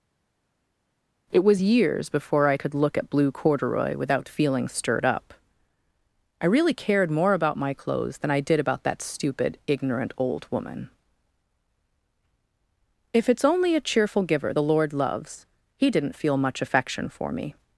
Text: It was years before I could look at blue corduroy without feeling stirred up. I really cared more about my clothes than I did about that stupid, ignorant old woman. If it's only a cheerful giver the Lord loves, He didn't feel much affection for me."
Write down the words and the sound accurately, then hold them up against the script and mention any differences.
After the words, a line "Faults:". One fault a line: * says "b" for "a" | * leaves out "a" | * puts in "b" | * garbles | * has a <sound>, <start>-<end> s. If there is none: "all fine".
It was years before I could look at blue corduroy without feeling stirred up. I really cared more about my clothes than I did about that stupid, ignorant old woman. If it's only a cheerful giver the Lord loves, He didn't feel much affection for me."
Faults:
all fine